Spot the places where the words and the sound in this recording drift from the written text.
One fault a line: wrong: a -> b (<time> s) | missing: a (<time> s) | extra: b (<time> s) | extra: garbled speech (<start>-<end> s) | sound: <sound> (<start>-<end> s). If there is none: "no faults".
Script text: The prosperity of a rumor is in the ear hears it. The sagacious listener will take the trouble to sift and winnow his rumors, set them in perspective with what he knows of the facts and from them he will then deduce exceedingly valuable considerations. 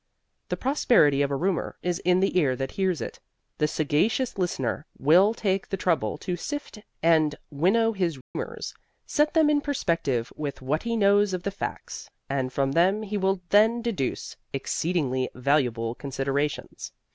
extra: that (2.5 s)
sound: dropout (8.2-8.4 s)